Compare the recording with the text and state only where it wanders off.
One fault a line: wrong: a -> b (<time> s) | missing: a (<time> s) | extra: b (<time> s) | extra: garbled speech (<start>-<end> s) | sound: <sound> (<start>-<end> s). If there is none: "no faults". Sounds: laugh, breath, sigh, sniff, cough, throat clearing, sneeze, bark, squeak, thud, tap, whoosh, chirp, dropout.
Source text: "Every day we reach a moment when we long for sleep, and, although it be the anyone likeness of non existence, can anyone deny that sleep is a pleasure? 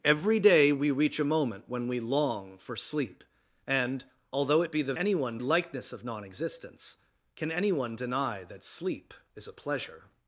no faults